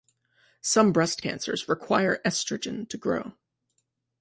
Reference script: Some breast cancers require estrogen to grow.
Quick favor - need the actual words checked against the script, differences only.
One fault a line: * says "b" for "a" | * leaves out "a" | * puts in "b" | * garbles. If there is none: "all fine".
all fine